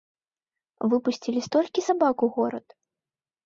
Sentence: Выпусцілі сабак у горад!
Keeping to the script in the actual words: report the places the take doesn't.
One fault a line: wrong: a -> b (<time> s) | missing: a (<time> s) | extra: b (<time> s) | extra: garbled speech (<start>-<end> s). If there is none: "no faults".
extra: столькі (1.5 s)